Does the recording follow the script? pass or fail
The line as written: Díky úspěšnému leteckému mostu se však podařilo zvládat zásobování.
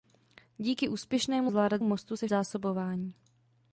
fail